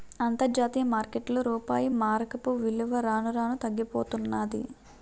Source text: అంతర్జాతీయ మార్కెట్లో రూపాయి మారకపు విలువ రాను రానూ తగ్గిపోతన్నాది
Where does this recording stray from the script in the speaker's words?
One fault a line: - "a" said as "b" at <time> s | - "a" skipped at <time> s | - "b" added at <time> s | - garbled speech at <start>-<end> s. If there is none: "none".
none